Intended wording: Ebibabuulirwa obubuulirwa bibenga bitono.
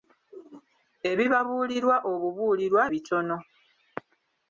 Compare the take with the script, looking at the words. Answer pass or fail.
fail